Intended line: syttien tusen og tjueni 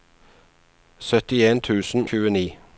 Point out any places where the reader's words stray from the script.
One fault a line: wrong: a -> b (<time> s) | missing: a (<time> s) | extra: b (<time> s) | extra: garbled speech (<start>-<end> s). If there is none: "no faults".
missing: og (2.1 s)